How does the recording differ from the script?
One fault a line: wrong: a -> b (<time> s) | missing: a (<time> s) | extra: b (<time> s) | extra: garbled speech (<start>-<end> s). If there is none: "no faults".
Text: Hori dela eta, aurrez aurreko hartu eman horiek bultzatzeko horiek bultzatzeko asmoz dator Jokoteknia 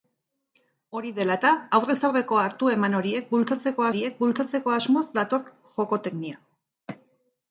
no faults